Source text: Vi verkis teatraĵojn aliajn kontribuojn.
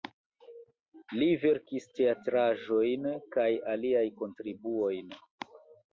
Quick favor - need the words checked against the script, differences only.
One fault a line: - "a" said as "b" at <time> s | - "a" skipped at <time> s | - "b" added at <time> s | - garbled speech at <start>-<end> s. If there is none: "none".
- "Vi" said as "Li" at 1.2 s
- "kaj" added at 3.4 s